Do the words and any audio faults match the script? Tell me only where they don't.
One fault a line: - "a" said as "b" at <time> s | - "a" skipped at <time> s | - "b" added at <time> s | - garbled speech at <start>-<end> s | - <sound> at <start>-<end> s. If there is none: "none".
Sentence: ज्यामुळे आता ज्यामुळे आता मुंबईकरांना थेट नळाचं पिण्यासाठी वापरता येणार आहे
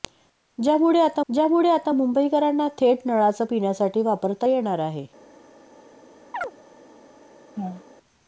- chirp at 6.3-6.5 s
- laugh at 7.5-7.8 s